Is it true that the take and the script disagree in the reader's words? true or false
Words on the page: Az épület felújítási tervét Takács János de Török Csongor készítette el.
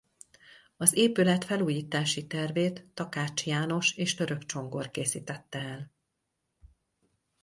true